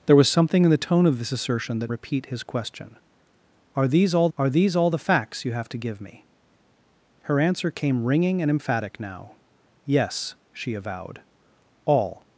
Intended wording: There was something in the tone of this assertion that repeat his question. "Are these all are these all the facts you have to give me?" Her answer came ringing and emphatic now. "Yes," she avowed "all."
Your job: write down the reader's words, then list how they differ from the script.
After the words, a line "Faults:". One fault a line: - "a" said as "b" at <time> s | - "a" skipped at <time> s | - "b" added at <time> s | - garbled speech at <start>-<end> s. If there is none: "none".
There was something in the tone of this assertion that repeat his question. "Are these all are these all the facts you have to give me?" Her answer came ringing and emphatic now. "Yes," she avowed "all."
Faults:
none